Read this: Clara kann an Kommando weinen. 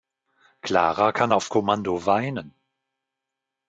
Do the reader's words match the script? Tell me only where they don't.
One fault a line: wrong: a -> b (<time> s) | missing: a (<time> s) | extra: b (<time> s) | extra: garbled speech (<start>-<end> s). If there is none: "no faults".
wrong: an -> auf (1.3 s)